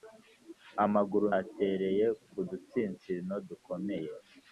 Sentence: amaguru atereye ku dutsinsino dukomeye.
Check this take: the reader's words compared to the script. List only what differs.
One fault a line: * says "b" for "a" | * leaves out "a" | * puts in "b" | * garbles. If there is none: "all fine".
all fine